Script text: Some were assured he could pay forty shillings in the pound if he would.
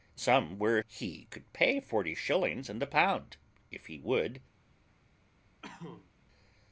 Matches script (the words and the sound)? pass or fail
fail